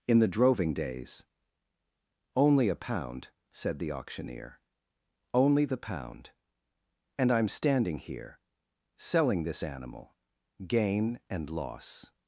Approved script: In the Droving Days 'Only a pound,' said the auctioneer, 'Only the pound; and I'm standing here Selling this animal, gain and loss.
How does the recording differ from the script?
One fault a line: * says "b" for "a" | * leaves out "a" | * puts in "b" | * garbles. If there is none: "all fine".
all fine